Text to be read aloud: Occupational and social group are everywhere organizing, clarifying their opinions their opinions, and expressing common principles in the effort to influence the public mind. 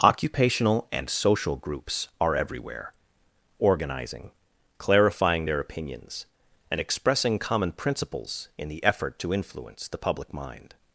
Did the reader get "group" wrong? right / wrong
wrong